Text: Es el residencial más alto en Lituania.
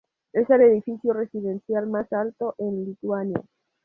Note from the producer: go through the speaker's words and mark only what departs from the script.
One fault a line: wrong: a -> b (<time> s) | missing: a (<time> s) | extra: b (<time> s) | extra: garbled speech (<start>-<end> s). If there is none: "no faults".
extra: edificio (0.6 s)